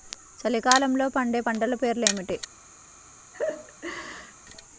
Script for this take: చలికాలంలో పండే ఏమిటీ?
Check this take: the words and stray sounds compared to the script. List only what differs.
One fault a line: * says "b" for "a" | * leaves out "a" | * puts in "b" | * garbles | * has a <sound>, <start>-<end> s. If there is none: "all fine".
* puts in "పంటల పేర్లు"
* has a laugh, 3.3-4.3 s